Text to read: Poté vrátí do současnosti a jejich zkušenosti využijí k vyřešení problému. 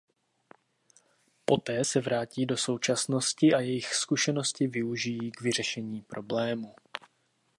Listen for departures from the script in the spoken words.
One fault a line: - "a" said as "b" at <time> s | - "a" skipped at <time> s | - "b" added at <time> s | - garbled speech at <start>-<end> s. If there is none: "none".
- "se" added at 1.8 s